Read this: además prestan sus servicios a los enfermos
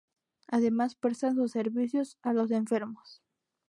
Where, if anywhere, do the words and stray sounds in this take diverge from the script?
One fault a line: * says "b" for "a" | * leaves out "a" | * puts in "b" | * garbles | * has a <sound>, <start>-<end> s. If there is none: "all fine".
all fine